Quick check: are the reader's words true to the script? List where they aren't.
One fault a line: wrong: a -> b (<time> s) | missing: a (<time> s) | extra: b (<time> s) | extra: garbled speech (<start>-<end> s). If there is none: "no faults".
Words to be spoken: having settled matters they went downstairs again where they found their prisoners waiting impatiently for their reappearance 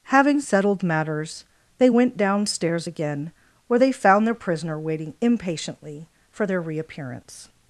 wrong: prisoners -> prisoner (4.3 s)